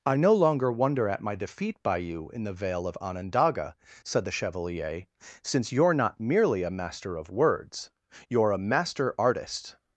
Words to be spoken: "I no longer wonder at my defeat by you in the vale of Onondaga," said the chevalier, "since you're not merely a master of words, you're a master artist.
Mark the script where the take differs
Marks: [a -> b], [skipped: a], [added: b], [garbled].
"I no longer wonder at my defeat by you in the vale of Onondaga," said the chevalier, "since you're not merely a master of words, you're a master artist.